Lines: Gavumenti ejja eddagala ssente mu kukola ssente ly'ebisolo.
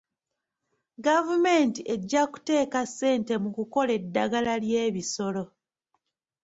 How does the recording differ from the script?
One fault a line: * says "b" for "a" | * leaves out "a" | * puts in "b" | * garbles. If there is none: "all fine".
* says "kuteeka" for "eddagala"
* says "eddagala" for "ssente"